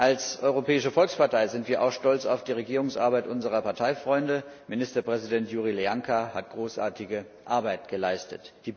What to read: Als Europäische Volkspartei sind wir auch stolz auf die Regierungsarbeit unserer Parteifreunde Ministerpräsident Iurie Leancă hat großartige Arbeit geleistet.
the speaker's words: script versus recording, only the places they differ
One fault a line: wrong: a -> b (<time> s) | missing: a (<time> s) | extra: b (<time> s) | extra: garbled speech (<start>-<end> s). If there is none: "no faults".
no faults